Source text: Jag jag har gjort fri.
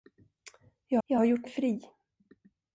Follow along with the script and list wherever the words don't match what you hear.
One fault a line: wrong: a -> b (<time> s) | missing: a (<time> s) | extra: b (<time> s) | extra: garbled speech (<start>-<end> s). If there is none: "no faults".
no faults